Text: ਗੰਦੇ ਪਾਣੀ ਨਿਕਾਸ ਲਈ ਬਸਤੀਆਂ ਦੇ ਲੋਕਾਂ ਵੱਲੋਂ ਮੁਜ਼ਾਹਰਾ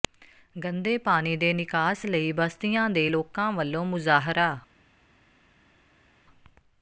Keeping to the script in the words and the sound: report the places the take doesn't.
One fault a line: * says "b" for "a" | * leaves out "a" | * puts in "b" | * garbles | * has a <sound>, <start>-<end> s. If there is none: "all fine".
* puts in "ਦੇ"